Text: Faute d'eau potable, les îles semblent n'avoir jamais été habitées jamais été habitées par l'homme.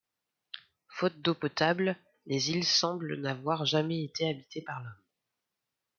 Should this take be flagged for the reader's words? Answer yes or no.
yes